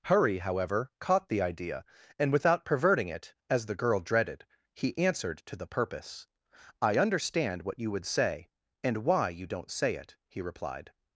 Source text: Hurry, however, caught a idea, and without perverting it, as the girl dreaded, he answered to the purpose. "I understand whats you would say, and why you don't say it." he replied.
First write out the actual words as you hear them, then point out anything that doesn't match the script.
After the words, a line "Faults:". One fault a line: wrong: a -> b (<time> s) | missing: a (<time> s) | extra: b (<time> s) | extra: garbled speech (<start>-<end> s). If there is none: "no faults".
Hurry, however, caught the idea, and without perverting it, as the girl dreaded, he answered to the purpose. "I understand what you would say, and why you don't say it." he replied.
Faults:
wrong: a -> the (1.3 s)
wrong: whats -> what (7.6 s)